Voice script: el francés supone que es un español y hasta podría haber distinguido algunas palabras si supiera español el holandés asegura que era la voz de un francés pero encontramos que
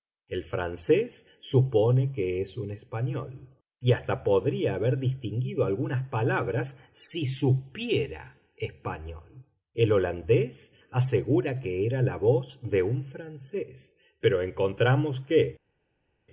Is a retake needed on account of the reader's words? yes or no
no